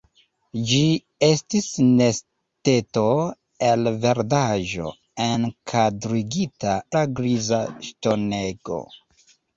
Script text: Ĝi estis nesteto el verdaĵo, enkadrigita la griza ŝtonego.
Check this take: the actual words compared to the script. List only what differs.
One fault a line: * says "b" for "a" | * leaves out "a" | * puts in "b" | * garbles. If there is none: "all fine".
all fine